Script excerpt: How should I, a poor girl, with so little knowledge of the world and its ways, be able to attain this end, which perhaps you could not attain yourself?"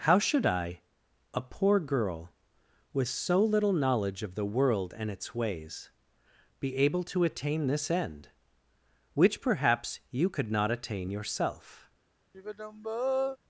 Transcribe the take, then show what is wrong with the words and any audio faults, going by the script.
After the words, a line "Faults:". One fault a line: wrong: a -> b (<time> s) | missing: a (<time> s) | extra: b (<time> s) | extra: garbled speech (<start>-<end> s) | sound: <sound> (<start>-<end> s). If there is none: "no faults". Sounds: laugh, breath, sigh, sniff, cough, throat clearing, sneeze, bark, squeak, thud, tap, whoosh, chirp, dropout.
How should I, a poor girl, with so little knowledge of the world and its ways, be able to attain this end, which perhaps you could not attain yourself?"
Faults:
sound: sigh (12.3-13.4 s)